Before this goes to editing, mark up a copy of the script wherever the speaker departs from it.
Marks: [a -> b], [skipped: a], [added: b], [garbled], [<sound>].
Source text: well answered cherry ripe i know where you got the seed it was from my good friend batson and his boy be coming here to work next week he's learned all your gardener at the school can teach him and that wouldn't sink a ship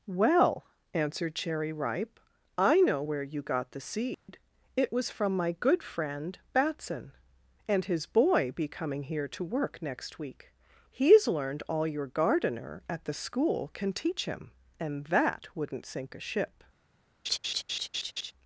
well answered cherry ripe i know where you got the seed [dropout] it was from my good friend batson and his boy be coming here to work next week he's learned all your gardener at the school can teach him and that wouldn't sink a ship [laugh]